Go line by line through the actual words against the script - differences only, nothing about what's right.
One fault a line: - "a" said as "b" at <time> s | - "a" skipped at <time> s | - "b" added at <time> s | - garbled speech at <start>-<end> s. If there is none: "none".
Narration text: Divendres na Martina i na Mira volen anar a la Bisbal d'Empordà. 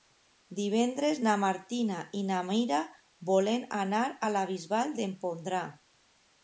none